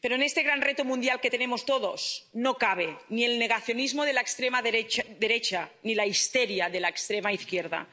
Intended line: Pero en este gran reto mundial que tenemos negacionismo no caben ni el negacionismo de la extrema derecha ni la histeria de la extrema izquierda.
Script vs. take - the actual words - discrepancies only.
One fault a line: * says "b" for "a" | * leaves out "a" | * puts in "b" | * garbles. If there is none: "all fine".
* says "todos" for "negacionismo"